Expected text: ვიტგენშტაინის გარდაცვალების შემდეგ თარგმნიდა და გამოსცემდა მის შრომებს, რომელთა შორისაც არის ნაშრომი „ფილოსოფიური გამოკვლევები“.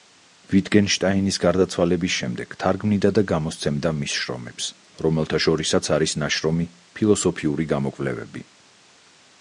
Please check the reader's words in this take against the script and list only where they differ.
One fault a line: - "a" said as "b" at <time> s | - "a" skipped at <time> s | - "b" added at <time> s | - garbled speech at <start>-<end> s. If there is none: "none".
none